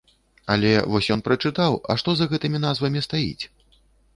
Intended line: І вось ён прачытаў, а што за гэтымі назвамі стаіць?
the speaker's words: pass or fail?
fail